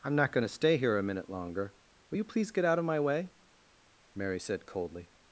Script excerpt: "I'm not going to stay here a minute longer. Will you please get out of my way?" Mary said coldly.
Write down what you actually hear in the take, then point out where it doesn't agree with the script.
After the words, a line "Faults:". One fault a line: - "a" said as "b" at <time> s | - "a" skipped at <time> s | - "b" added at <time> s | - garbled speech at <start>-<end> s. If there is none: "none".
"I'm not going to stay here a minute longer. Will you please get out of my way?" Mary said coldly.
Faults:
none